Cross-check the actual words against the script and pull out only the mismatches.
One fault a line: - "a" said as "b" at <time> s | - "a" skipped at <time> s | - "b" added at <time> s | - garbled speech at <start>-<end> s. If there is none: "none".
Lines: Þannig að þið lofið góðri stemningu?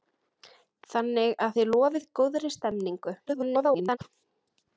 - garbled speech at 3.3-4.0 s